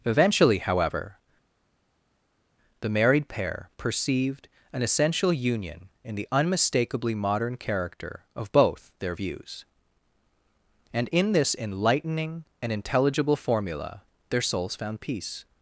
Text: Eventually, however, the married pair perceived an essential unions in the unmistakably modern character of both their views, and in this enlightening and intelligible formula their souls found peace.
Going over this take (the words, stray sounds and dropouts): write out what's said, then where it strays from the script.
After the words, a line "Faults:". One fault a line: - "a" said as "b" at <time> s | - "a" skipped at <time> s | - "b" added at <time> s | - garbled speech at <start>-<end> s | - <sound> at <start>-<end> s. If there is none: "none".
Eventually, however, the married pair perceived an essential union in the unmistakably modern character of both their views, and in this enlightening and intelligible formula their souls found peace.
Faults:
- "unions" said as "union" at 5.3 s